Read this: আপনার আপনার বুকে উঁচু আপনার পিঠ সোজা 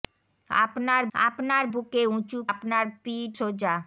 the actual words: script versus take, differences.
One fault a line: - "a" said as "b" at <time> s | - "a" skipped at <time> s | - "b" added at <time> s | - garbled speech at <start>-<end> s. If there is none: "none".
none